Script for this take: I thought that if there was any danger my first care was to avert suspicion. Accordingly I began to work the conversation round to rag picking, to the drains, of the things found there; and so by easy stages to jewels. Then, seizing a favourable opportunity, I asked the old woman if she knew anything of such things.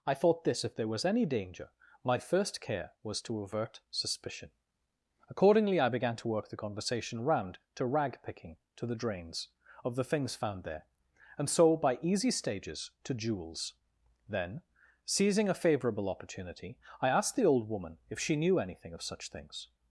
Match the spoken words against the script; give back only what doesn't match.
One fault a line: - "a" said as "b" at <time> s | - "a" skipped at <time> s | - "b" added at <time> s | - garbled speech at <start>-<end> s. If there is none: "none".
- "that" said as "this" at 0.5 s